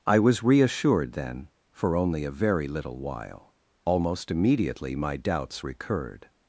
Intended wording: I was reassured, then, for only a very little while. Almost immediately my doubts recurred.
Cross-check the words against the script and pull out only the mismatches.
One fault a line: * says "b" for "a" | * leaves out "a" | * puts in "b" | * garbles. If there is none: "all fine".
all fine